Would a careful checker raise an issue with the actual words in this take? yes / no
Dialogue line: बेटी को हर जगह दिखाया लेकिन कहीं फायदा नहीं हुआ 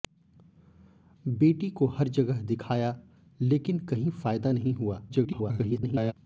yes